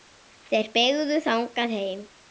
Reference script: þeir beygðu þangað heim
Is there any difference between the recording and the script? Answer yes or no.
no